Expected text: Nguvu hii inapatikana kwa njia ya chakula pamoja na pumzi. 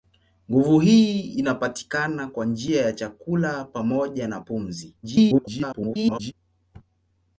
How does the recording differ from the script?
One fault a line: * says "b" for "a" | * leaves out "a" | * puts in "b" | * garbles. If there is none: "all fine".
* garbles